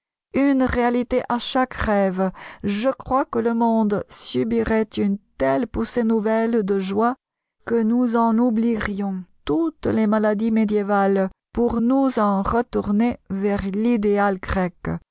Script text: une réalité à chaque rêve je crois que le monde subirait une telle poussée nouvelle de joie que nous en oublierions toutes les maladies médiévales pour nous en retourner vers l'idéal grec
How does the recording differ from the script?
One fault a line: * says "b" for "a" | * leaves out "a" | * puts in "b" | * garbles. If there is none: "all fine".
all fine